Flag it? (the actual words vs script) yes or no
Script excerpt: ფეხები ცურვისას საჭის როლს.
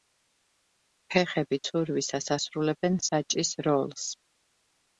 yes